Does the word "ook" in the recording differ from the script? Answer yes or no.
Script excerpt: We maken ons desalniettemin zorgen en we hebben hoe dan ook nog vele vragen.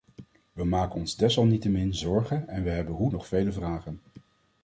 yes